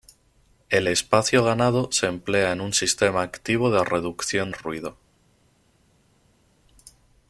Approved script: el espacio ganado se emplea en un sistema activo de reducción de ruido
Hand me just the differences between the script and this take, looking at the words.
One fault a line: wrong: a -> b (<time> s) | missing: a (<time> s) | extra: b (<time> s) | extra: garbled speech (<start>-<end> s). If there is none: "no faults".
missing: de (4.5 s)